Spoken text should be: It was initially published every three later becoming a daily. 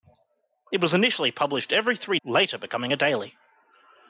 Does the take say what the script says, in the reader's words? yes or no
yes